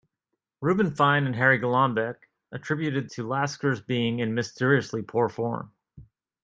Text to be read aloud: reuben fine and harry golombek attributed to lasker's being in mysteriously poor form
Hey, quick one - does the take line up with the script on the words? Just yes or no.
yes